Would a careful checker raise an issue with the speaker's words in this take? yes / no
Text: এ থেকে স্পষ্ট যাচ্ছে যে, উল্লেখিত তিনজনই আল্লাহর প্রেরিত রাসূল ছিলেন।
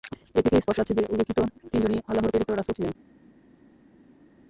no